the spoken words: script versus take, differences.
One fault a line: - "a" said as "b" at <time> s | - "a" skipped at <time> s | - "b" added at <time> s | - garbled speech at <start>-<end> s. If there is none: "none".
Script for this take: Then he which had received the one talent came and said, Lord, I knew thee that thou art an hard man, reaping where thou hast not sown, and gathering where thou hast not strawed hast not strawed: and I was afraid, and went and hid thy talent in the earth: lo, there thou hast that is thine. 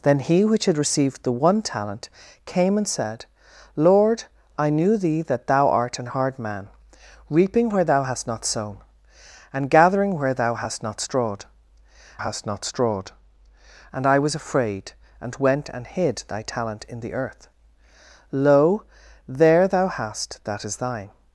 none